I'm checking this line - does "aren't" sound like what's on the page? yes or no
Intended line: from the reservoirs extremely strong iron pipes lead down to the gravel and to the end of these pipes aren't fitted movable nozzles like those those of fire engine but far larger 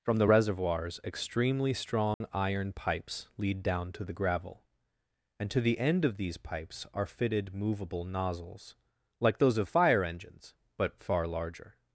no